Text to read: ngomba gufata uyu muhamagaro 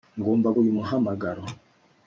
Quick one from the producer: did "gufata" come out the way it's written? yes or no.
no